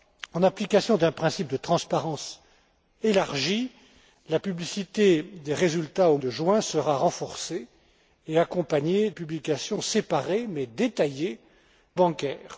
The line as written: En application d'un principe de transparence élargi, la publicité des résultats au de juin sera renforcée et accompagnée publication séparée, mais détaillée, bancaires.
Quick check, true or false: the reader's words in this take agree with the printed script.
true